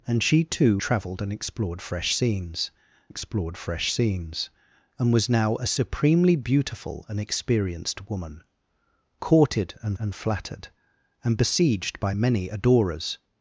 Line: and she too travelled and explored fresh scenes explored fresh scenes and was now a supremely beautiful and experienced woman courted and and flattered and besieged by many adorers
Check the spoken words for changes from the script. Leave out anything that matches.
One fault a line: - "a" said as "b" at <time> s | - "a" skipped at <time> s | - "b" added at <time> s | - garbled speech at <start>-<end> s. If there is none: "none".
none